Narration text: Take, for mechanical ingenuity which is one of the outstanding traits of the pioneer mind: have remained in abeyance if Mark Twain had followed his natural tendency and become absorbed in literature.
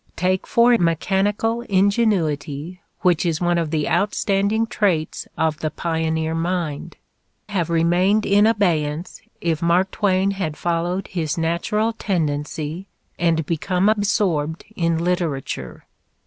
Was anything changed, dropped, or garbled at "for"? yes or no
no